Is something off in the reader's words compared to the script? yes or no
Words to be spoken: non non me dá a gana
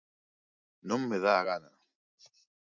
yes